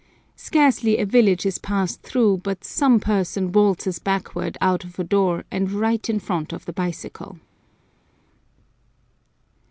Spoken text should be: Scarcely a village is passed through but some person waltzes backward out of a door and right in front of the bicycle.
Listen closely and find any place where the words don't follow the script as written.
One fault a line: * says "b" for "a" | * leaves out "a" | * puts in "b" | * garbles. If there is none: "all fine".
all fine